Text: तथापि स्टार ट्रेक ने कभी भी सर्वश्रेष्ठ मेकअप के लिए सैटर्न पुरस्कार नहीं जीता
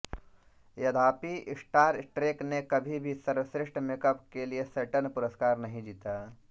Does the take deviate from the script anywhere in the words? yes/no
no